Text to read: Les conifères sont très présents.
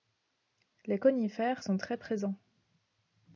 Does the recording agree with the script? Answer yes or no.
yes